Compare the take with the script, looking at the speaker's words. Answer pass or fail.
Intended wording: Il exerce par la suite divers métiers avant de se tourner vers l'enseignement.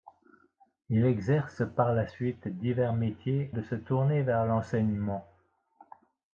fail